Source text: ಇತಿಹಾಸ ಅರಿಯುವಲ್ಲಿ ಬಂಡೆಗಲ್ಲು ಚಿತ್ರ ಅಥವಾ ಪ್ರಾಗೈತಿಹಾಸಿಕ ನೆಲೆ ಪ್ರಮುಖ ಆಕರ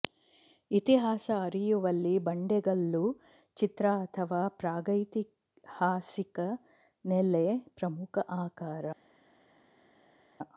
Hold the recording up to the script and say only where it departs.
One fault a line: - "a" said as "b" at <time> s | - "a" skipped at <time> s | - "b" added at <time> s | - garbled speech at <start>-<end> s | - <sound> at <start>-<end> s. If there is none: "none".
none